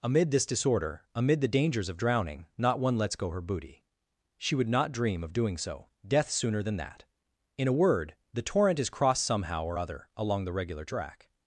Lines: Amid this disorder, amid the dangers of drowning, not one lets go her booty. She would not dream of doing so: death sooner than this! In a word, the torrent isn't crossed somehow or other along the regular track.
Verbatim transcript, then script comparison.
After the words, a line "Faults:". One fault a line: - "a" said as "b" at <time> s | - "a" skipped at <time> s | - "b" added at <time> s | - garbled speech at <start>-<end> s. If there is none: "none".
Amid this disorder, amid the dangers of drowning, not one lets go her booty. She would not dream of doing so: death sooner than that! In a word, the torrent is crossed somehow or other along the regular track.
Faults:
- "this" said as "that" at 6.8 s
- "isn't" said as "is" at 8.8 s